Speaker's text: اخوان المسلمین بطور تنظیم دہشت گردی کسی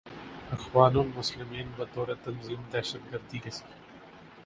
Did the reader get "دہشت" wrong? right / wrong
right